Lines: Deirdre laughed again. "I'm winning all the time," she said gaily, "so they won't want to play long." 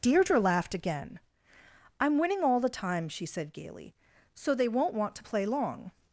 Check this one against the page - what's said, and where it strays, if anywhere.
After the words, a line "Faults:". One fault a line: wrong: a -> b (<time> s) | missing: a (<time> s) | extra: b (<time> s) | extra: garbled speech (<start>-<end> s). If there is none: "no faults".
Deirdre laughed again. "I'm winning all the time," she said gaily, "so they won't want to play long."
Faults:
no faults